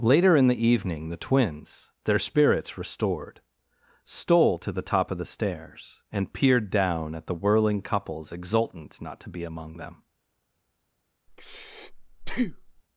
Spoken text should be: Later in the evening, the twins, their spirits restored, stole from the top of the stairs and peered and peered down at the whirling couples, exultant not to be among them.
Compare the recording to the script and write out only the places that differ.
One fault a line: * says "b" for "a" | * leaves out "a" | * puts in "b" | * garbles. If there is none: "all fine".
* says "to" for "from"
* leaves out "and peered"